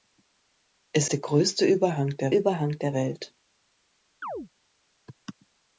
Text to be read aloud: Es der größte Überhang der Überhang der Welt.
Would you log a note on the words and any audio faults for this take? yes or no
yes